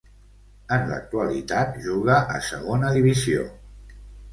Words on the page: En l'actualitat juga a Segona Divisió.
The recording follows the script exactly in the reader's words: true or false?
true